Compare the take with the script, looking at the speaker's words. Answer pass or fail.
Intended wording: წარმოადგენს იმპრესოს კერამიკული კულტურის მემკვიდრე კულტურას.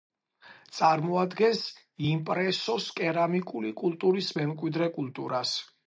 pass